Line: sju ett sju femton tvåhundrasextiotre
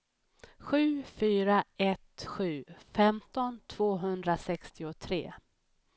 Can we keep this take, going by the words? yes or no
no